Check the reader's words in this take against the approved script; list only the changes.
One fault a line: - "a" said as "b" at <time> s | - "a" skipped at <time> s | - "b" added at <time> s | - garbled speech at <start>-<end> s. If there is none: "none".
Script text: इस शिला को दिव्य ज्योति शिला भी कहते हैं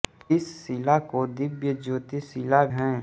- "भी कहते" skipped at 2.6 s